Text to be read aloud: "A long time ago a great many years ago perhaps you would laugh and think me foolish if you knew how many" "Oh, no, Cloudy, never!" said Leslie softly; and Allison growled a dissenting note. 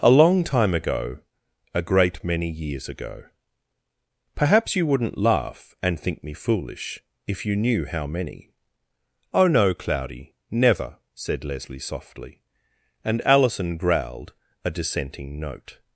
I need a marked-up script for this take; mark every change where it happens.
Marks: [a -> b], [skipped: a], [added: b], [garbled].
"A long time ago a great many years ago perhaps you [would -> wouldn't] laugh and think me foolish if you knew how many" "Oh, no, Cloudy, never!" said Leslie softly; and Allison growled a dissenting note.